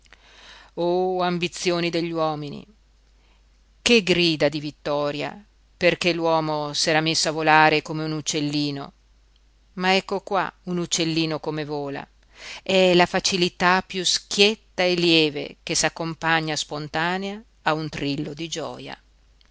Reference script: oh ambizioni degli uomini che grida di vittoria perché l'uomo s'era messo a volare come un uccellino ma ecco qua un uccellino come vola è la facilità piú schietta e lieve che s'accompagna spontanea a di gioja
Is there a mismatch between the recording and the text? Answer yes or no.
yes